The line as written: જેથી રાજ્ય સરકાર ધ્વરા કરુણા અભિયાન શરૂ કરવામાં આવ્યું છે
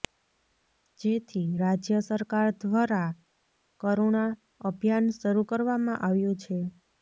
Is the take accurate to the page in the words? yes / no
yes